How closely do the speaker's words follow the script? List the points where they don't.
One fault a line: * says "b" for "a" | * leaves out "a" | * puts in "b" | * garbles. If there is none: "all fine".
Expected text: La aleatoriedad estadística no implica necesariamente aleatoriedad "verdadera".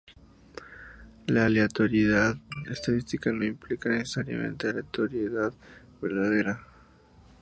all fine